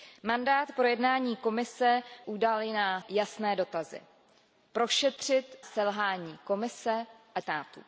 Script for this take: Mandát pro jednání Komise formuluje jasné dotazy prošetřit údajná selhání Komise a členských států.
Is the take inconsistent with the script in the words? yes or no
yes